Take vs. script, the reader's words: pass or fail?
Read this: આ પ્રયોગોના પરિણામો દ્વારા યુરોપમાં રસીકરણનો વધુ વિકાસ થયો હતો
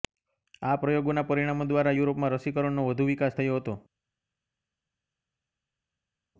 pass